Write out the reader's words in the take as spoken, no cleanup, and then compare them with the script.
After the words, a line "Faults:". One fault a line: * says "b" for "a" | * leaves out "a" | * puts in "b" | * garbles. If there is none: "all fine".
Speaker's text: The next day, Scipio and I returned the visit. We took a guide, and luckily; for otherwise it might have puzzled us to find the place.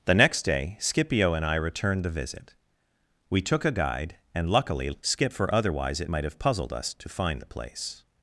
The next day, Scipio and I returned the visit. We took a guide, and luckily; skip for otherwise it might have puzzled us to find the place.
Faults:
* puts in "skip"